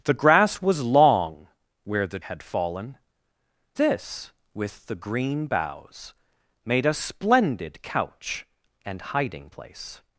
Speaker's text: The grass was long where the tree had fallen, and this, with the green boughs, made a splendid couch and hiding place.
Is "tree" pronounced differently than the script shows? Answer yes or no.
yes